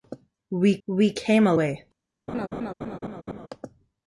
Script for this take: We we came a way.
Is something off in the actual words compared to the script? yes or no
no